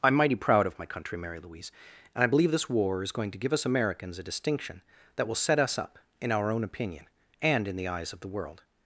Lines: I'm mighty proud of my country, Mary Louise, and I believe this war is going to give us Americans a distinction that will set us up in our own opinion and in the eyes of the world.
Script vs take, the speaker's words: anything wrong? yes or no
no